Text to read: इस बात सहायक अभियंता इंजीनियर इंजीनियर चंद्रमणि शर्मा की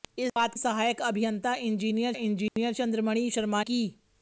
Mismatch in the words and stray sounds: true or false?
true